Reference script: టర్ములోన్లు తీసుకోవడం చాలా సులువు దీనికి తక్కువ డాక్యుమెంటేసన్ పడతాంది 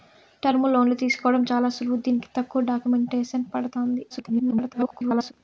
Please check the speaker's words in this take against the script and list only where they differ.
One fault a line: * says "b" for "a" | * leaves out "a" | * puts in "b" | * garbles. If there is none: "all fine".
* garbles